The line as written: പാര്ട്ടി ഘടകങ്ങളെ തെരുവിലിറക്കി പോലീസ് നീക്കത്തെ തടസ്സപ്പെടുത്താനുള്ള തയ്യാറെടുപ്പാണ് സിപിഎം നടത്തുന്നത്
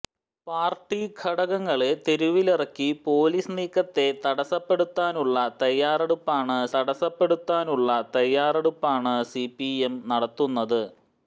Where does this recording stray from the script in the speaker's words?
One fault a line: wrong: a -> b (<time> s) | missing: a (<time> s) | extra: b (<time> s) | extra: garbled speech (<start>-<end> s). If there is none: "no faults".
extra: തടസ്സപ്പെടുത്താനുള്ള തയ്യാറെടുപ്പാണ് (6.7 s)